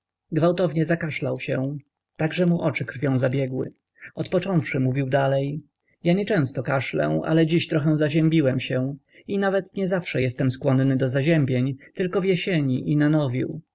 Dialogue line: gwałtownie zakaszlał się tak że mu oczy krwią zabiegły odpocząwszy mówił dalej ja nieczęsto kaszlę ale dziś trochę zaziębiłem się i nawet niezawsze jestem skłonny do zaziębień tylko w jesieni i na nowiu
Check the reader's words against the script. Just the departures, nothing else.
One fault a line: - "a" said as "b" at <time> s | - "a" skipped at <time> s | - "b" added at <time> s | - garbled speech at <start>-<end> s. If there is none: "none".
none